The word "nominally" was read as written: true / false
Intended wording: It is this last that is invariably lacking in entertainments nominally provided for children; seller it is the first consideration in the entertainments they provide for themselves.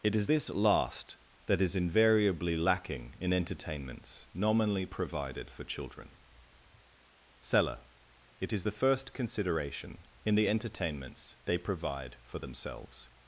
true